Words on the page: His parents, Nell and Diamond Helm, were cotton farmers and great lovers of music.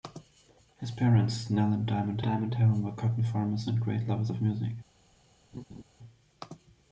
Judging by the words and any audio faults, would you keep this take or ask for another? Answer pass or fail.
fail